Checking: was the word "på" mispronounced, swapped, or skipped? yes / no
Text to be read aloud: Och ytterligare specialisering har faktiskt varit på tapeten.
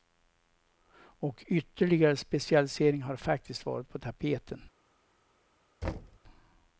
no